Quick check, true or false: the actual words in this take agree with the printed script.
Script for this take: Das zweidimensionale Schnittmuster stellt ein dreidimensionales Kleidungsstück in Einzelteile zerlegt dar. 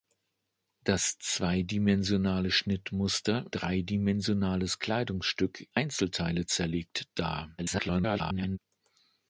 false